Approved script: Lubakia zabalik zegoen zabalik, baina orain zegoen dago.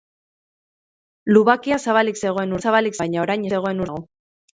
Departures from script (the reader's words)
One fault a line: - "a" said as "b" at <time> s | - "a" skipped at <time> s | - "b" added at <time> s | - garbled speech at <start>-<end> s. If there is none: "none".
none